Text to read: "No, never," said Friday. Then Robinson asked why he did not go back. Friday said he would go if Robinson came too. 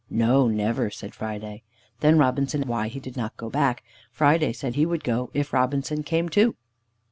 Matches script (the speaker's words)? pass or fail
fail